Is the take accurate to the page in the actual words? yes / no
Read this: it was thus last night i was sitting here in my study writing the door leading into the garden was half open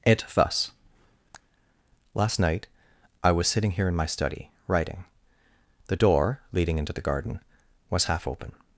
no